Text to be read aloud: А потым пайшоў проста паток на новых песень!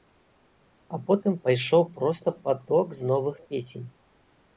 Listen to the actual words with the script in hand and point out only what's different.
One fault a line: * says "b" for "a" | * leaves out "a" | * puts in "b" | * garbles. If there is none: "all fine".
* says "з" for "на"